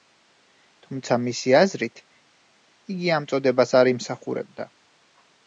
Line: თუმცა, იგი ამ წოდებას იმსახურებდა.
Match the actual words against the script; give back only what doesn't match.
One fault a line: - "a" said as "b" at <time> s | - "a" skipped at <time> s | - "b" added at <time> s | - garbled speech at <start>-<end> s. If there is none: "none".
- "მისი აზრით" added at 1.2 s
- "არ" added at 3.8 s